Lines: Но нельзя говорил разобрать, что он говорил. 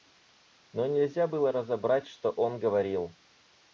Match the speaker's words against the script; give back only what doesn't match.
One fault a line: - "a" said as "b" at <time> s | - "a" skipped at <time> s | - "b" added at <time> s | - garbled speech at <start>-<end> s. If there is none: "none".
- "говорил" said as "было" at 1.2 s